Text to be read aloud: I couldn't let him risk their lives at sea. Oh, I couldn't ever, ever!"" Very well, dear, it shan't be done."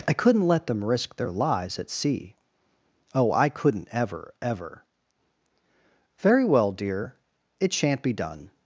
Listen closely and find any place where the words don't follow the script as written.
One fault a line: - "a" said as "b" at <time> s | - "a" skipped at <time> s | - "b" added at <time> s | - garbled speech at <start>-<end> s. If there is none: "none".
- "him" said as "them" at 0.7 s